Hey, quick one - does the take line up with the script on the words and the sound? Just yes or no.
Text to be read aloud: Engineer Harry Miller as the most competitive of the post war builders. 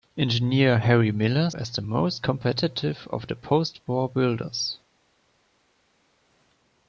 yes